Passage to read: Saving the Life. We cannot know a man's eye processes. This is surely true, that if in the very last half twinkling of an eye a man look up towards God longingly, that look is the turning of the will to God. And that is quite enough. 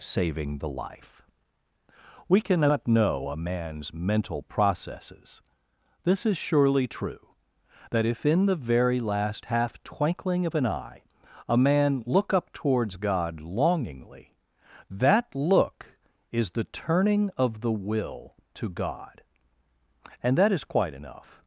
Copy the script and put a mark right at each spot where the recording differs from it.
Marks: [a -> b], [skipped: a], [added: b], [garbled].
Saving the Life. We cannot know a man's [eye -> mental] processes. This is surely true, that if in the very last half twinkling of an eye a man look up towards God longingly, that look is the turning of the will to God. And that is quite enough.